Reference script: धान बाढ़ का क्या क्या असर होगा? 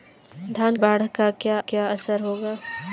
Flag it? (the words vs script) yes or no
no